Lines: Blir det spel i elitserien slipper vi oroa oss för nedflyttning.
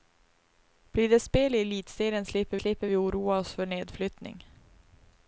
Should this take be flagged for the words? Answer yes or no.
yes